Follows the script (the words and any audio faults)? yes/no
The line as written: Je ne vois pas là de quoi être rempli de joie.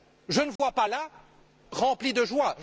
no